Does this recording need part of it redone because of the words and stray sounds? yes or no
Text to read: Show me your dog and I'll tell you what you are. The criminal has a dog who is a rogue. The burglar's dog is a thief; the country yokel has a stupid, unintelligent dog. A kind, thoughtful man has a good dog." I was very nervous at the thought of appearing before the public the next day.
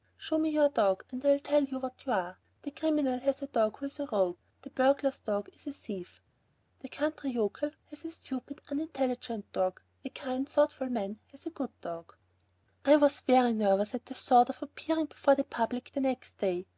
no